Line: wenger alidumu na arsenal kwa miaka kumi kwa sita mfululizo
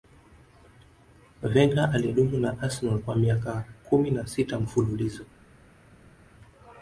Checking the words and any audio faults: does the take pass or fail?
fail